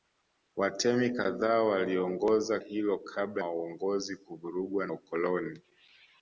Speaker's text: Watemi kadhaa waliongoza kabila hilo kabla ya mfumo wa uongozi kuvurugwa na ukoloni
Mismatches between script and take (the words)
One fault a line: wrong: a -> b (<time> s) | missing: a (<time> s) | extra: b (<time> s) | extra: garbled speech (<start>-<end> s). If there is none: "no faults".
missing: kabila (2.6 s)
missing: ya mfumo (3.4 s)
missing: na (4.9 s)